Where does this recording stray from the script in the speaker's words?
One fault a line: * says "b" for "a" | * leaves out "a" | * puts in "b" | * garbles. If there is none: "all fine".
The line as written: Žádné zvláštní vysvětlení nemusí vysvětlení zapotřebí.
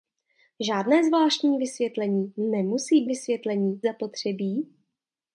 all fine